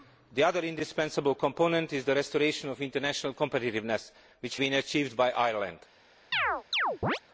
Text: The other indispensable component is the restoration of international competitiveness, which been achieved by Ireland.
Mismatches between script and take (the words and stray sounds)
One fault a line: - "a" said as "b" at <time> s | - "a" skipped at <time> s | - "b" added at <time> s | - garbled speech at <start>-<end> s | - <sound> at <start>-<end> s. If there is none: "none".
- chirp at 6.3-7.2 s